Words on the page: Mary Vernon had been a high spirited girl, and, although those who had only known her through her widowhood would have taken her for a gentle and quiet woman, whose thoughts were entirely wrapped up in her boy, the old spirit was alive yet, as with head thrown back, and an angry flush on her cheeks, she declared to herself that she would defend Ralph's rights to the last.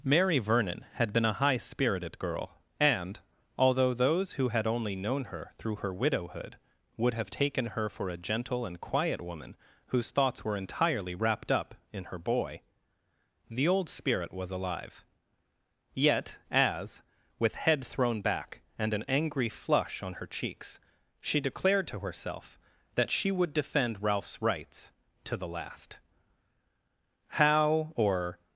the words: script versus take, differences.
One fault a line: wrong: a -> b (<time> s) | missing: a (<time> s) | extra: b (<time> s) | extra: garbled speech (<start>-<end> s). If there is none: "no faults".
extra: How or (27.3 s)